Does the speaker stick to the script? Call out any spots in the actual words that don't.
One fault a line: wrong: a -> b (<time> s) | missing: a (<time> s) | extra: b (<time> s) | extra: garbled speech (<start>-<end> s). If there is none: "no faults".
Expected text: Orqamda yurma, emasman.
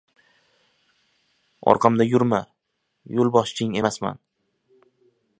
extra: yo‘lboshching (3.2 s)